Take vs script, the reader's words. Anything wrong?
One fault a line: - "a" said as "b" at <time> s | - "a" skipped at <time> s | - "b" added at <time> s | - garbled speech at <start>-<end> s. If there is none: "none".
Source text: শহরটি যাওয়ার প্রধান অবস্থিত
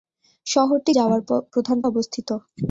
none